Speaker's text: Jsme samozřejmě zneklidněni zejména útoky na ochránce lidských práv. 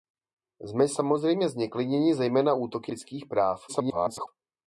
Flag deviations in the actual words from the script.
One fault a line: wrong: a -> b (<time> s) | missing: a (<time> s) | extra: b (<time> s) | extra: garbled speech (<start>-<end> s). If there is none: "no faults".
missing: na ochránce (2.9 s)
extra: garbled speech (3.7-4.3 s)